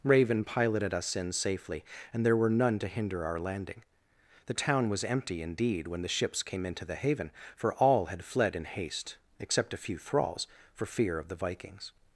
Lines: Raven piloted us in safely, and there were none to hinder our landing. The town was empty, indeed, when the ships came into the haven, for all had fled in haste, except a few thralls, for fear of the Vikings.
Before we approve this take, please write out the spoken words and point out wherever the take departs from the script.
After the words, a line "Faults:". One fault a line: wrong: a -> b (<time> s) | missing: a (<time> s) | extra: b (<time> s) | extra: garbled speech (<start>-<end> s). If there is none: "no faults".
Raven piloted us in safely, and there were none to hinder our landing. The town was empty, indeed, when the ships came into the haven, for all had fled in haste, except a few thralls, for fear of the Vikings.
Faults:
no faults